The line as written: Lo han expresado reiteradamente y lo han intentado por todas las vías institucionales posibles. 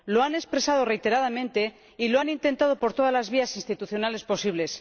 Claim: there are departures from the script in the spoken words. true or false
false